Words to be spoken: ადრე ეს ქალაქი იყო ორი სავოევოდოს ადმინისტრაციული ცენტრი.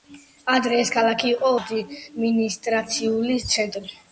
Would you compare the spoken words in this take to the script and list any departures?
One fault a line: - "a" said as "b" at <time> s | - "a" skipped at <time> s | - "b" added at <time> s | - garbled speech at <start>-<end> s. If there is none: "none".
- "ორი სავოევოდოს" skipped at 1.5 s